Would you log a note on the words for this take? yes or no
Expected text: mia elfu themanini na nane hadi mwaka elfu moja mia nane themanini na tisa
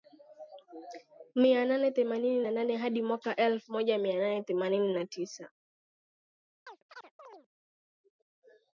yes